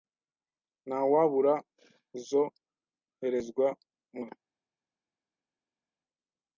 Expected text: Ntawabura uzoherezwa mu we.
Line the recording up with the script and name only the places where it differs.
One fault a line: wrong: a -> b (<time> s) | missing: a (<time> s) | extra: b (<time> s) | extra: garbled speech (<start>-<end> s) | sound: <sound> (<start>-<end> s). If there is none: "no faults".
no faults